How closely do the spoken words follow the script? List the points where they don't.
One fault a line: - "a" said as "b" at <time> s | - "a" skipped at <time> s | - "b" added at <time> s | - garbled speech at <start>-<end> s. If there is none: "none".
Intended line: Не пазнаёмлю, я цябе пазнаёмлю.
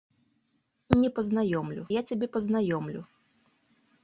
none